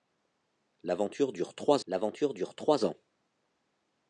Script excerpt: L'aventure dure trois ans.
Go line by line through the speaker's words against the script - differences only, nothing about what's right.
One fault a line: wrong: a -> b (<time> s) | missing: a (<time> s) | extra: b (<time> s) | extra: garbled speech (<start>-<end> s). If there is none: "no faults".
extra: l'aventure dure trois (1.8 s)